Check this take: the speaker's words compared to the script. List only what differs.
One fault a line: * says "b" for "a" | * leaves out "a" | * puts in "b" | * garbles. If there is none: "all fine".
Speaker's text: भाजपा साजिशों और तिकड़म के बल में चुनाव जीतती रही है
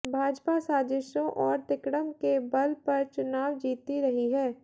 * says "पर" for "में"